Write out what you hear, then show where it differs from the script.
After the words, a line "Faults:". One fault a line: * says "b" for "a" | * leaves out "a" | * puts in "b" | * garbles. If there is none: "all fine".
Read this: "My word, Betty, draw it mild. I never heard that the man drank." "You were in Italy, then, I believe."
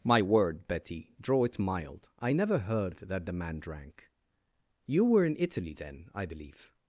"My word, Betty, draw it mild. I never heard that the man drank." "You were in Italy, then, I believe."
Faults:
all fine